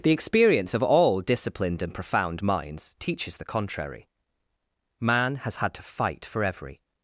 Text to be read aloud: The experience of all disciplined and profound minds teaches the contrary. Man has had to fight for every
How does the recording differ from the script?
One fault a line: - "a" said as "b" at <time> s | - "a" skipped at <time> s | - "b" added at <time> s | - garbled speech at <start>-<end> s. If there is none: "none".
none